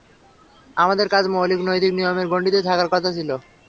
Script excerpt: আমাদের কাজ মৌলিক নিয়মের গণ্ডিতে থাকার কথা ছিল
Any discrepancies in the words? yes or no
yes